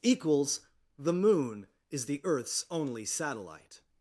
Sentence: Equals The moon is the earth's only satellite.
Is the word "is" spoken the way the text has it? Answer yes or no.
yes